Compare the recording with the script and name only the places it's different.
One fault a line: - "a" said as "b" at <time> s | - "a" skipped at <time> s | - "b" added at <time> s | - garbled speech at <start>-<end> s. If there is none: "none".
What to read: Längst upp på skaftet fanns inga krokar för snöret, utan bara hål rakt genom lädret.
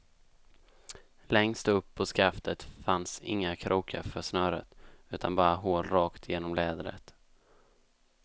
none